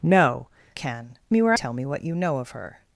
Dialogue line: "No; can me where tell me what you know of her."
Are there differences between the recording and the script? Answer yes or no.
no